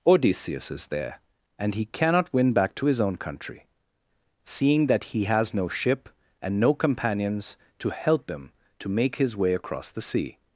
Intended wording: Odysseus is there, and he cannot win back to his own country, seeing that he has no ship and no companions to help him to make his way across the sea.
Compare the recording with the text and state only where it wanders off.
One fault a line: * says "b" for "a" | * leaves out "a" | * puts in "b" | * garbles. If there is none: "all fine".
all fine